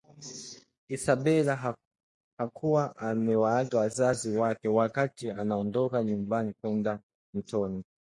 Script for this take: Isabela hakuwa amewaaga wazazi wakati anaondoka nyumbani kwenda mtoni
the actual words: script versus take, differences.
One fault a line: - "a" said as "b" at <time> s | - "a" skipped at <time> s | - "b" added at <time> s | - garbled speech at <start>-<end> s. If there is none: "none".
- "wake" added at 4.4 s